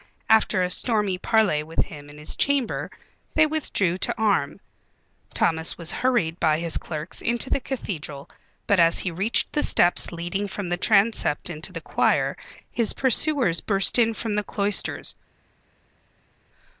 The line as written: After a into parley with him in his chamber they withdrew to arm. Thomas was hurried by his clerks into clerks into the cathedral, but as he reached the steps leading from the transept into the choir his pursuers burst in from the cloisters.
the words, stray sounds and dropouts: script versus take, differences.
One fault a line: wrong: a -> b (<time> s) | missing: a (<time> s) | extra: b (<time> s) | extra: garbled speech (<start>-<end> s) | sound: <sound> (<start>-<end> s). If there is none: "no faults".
wrong: into -> stormy (0.7 s)
missing: clerks into (7.5 s)